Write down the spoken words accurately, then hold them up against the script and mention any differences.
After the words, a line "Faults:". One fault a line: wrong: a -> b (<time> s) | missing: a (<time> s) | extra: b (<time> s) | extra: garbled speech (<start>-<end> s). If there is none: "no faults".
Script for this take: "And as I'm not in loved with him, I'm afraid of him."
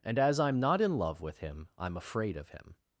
"And as I'm not in love with him, I'm afraid of him."
Faults:
wrong: loved -> love (1.0 s)